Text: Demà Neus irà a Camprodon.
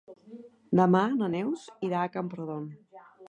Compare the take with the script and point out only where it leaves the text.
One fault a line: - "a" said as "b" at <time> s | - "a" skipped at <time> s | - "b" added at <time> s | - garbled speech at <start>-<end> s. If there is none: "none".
- "na" added at 1.2 s